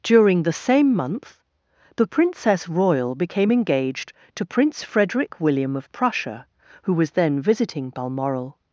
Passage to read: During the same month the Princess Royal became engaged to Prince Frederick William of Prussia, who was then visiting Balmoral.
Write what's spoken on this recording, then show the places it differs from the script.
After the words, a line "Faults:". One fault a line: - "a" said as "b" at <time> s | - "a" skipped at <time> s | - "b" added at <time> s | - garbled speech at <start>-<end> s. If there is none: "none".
During the same month the Princess Royal became engaged to Prince Frederick William of Prussia, who was then visiting Balmoral.
Faults:
none